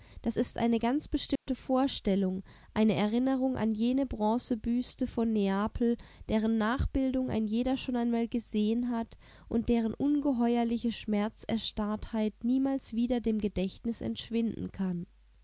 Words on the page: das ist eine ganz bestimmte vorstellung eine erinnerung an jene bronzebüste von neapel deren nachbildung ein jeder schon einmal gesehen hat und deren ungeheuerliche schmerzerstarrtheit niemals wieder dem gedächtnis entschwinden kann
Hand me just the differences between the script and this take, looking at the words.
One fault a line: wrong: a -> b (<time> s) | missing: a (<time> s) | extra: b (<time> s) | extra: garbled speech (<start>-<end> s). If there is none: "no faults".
no faults